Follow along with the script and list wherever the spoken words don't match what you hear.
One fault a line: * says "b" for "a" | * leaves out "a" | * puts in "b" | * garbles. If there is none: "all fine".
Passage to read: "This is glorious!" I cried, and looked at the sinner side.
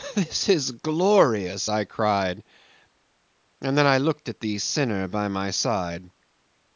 * puts in "then I"
* puts in "by my"